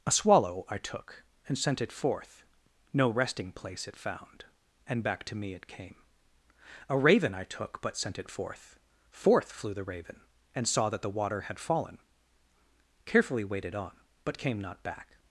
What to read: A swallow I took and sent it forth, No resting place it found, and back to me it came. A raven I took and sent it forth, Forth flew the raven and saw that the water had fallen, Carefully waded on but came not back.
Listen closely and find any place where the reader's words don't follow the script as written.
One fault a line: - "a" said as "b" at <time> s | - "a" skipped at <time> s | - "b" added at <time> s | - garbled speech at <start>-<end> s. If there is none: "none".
- "and" said as "but" at 7.8 s